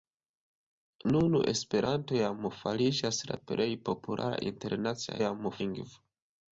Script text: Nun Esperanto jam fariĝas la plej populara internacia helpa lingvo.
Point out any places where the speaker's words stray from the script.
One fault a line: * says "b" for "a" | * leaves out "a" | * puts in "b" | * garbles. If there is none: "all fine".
* says "jam" for "helpa"